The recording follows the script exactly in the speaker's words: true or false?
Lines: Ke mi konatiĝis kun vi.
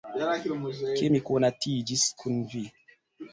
true